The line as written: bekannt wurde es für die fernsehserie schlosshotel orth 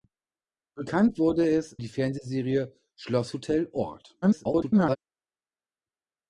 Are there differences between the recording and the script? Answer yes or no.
yes